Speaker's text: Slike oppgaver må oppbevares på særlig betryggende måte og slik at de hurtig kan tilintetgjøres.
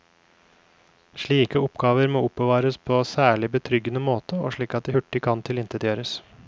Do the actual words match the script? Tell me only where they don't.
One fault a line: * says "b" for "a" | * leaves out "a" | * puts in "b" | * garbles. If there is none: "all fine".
all fine